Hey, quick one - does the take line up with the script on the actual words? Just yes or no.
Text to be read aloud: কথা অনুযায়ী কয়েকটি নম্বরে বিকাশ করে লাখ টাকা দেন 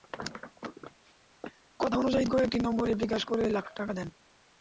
yes